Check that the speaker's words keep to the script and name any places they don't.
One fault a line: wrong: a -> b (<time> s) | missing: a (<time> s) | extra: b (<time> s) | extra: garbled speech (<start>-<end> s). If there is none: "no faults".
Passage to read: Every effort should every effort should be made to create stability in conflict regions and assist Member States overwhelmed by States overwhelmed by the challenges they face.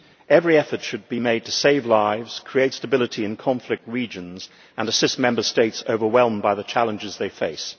missing: every effort should (1.1 s)
extra: save lives (1.5 s)
missing: States overwhelmed by (6.5 s)